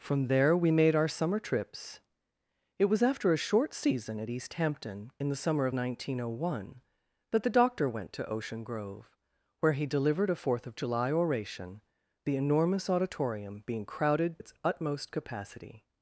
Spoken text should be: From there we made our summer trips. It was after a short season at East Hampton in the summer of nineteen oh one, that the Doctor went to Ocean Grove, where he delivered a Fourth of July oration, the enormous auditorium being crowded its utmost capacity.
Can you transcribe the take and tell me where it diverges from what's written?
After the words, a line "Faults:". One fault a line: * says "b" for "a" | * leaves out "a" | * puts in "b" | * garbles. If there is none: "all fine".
From there we made our summer trips. It was after a short season at East Hampton in the summer of nineteen oh one, that the Doctor went to Ocean Grove, where he delivered a Fourth of July oration, the enormous auditorium being crowded its utmost capacity.
Faults:
all fine